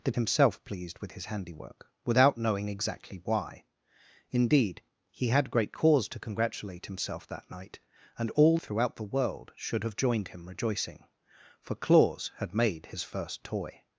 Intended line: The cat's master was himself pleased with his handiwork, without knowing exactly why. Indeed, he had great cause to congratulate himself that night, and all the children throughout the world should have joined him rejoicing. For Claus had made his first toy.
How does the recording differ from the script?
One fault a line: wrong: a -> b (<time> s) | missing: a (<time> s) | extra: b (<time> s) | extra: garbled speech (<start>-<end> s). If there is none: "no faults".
missing: cat's master was (0.1 s)
missing: the children (8.6 s)